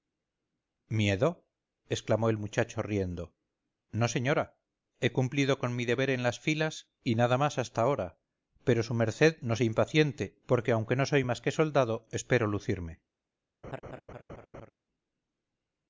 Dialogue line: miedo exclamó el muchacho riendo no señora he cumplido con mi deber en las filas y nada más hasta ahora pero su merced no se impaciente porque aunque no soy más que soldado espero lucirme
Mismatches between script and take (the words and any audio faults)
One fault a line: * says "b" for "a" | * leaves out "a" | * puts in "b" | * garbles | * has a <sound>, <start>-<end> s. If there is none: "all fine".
* has a laugh, 13.6-14.7 s